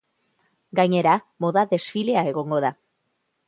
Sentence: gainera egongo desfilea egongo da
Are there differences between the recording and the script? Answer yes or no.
yes